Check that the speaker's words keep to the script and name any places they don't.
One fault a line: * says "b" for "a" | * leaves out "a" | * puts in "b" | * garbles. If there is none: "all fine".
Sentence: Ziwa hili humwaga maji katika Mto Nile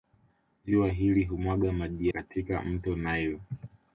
all fine